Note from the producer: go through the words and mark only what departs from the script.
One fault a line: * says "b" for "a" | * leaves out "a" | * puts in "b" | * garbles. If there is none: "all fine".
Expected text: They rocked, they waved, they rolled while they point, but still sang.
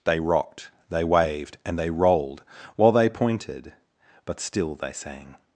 * puts in "and"
* says "pointed" for "point"
* puts in "they"